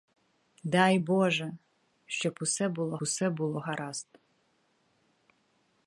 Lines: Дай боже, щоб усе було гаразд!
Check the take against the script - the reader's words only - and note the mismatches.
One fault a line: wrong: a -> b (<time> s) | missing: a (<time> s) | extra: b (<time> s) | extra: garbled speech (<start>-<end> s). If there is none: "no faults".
extra: усе було (3.0 s)